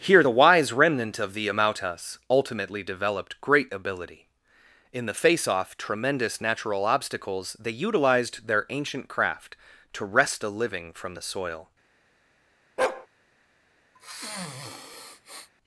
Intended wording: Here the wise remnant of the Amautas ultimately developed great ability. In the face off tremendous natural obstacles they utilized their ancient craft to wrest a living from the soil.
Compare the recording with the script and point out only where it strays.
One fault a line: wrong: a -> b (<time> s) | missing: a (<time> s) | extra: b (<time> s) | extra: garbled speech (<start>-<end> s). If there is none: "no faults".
no faults